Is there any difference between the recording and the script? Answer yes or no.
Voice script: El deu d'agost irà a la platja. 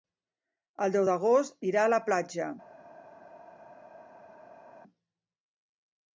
no